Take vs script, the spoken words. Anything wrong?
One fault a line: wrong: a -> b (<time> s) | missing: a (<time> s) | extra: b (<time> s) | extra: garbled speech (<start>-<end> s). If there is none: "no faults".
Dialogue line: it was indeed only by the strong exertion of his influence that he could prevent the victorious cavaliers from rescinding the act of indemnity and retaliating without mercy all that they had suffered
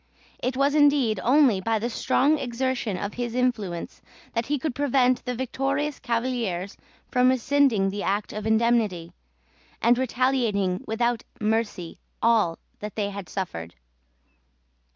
no faults